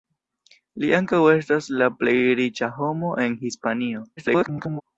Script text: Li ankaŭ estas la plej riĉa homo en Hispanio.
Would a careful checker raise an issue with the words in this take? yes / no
yes